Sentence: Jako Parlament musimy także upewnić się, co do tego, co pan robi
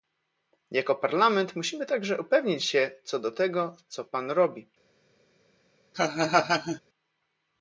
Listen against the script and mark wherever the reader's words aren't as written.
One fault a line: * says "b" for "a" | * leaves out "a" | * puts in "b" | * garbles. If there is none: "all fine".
all fine